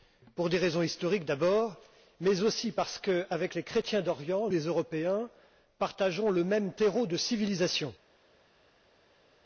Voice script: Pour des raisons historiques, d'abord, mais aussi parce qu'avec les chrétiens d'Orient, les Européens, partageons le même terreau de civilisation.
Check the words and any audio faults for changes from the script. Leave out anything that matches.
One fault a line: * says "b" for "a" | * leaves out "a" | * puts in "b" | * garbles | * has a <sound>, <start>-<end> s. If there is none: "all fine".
all fine